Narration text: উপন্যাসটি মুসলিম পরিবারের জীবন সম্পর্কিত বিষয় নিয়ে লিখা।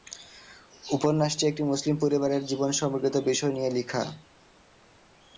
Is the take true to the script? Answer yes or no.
no